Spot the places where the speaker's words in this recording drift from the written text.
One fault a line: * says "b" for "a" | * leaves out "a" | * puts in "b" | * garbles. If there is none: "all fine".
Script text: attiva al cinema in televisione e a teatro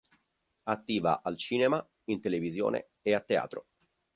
all fine